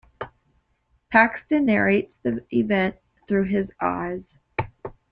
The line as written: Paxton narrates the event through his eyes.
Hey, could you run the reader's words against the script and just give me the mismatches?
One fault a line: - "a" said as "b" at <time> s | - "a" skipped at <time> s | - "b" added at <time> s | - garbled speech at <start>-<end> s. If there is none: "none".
none